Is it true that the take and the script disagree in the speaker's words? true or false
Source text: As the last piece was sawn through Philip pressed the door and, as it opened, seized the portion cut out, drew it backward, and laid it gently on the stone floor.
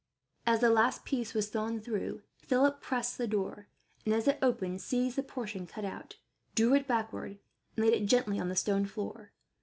false